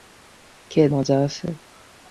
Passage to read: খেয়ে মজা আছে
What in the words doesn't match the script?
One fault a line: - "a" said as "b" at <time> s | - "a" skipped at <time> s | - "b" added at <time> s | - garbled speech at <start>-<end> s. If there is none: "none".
none